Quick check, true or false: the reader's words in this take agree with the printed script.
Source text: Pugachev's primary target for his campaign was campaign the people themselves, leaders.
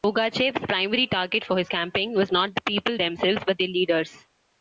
false